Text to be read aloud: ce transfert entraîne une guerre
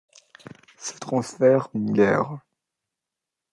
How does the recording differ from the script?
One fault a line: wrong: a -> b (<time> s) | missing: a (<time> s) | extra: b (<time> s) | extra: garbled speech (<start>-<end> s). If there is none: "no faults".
missing: entraîne (1.7 s)